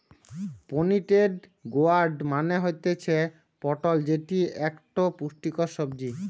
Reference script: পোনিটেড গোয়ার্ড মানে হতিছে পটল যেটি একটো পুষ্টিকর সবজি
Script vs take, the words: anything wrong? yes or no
no